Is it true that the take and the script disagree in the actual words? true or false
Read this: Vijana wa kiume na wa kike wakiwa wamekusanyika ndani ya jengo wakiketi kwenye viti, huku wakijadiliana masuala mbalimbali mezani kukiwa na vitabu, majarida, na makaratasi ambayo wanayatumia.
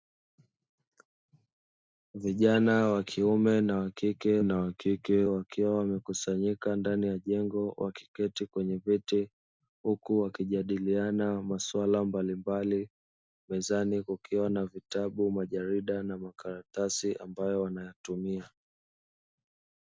true